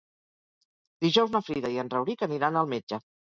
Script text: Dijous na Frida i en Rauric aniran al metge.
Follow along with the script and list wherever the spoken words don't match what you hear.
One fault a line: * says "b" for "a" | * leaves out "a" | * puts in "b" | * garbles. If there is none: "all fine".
all fine